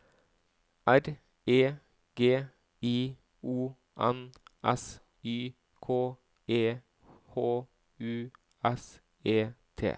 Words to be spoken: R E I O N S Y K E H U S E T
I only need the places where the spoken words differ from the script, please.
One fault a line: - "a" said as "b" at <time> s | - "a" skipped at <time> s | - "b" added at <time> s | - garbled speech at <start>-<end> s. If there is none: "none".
- "G" added at 2.1 s